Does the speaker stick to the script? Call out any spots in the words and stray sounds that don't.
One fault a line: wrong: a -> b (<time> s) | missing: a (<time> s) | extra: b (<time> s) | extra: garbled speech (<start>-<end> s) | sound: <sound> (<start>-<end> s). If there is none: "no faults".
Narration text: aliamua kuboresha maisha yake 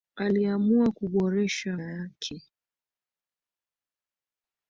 missing: maisha (1.8 s)